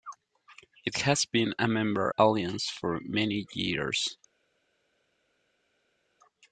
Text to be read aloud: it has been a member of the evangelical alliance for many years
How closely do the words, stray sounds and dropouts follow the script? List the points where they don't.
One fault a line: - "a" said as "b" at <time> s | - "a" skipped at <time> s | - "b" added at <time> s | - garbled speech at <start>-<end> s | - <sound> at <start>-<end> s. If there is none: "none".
- "of the evangelical" skipped at 2.1 s